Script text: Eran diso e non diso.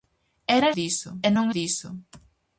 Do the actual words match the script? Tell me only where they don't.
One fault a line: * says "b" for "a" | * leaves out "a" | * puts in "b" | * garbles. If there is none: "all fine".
all fine